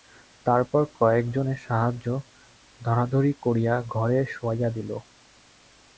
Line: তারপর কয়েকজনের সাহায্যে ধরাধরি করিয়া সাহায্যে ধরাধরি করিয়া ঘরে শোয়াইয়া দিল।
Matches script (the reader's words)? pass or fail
fail